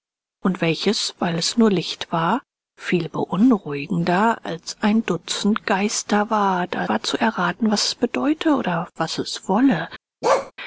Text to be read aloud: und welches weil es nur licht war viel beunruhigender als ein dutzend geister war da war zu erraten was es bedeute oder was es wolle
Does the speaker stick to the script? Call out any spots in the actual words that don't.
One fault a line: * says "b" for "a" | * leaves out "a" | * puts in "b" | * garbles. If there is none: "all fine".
all fine